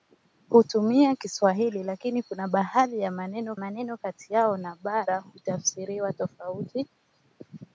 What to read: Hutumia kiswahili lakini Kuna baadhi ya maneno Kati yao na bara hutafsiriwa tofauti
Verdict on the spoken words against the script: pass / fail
fail